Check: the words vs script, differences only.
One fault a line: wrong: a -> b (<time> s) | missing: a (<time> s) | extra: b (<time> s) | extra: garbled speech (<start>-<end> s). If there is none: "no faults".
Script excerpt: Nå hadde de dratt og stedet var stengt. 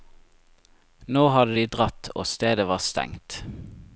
no faults